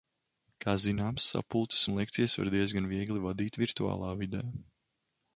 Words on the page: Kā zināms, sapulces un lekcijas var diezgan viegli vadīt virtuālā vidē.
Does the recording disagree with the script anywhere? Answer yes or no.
no